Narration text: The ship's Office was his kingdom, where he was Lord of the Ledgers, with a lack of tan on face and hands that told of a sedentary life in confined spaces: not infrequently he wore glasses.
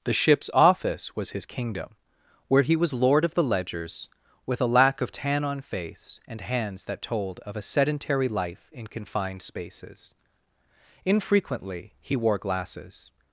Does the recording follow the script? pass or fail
fail